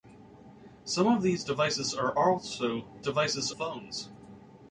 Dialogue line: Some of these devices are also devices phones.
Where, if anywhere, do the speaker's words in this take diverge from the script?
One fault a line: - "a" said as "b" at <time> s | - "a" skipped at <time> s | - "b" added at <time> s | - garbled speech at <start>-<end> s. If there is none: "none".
none